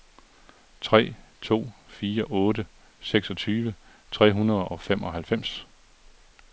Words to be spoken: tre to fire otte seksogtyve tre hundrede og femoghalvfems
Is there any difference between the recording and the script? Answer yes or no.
no